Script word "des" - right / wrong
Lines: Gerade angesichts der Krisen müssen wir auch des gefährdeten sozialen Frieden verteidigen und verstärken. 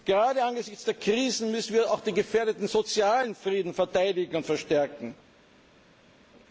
wrong